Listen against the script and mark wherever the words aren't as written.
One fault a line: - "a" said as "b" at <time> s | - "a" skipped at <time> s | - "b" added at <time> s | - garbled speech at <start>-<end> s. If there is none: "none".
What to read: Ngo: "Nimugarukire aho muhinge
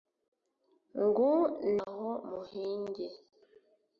- "Nimugarukire" skipped at 1.3 s